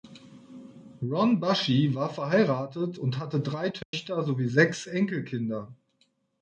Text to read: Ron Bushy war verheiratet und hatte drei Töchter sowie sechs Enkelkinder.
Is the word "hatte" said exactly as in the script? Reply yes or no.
yes